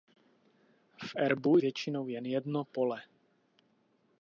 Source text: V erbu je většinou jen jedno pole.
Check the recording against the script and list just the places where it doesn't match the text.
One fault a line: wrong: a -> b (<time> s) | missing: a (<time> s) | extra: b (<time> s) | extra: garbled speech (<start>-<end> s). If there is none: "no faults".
missing: je (1.6 s)